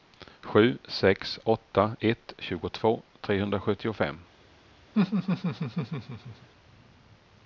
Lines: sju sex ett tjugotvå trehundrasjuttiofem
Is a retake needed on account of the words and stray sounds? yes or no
yes